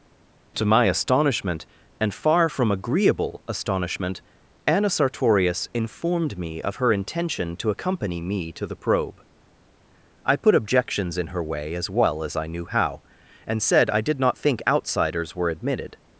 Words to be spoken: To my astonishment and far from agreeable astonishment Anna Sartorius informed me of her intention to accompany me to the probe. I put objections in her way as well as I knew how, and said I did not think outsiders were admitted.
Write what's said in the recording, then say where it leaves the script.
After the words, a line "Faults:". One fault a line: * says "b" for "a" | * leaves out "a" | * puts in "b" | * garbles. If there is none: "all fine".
To my astonishment and far from agreeable astonishment Anna Sartorius informed me of her intention to accompany me to the probe. I put objections in her way as well as I knew how, and said I did not think outsiders were admitted.
Faults:
all fine